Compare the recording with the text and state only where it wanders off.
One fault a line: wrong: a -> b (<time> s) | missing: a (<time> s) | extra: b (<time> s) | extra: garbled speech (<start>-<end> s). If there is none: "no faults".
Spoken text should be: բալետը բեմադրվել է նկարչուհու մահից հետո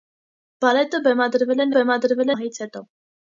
wrong: նկարչուհու -> բեմադրվել (1.8 s)